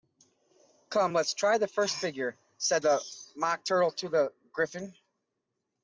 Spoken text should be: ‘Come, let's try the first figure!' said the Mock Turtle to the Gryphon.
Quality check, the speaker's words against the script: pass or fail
pass